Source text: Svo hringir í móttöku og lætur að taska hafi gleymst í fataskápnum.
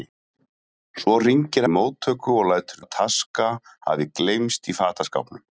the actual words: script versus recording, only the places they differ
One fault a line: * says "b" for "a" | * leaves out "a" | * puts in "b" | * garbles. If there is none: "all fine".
all fine